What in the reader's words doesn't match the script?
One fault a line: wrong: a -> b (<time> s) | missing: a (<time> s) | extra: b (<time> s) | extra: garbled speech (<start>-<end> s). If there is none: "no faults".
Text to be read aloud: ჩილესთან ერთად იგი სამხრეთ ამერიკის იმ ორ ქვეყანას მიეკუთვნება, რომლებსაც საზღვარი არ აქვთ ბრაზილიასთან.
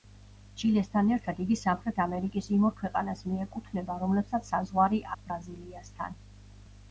missing: არ (5.0 s)